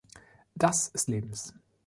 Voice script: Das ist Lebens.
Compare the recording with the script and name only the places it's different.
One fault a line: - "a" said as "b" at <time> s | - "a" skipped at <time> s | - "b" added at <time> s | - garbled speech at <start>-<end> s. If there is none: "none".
none